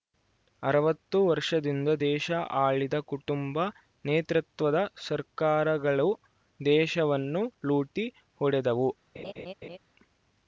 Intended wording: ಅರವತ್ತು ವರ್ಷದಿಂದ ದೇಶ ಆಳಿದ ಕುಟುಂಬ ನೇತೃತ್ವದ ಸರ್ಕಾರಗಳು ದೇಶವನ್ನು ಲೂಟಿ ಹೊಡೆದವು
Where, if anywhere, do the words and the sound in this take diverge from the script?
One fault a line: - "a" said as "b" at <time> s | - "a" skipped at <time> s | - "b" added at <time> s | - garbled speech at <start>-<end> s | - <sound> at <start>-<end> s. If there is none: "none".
- laugh at 9.1-9.8 s